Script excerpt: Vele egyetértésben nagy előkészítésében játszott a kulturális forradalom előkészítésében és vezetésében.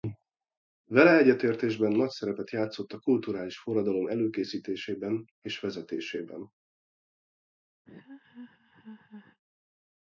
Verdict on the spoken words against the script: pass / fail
fail